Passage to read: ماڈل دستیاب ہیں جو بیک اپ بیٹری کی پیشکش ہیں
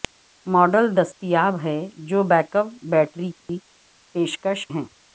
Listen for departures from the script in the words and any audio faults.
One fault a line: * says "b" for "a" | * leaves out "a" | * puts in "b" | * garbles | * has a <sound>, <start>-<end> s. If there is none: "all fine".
* has a dropout, 3.4-3.5 s